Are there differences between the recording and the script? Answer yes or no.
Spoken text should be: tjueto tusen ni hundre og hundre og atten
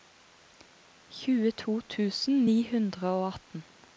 yes